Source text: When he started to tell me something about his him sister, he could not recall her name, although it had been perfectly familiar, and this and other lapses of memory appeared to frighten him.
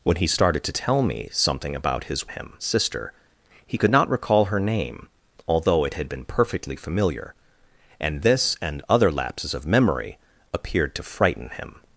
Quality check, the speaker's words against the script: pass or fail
pass